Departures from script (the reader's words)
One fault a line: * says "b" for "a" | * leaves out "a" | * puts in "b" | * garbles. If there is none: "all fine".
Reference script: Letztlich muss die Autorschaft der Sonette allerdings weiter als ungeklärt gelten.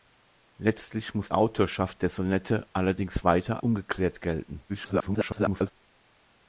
* leaves out "die"
* leaves out "als"
* garbles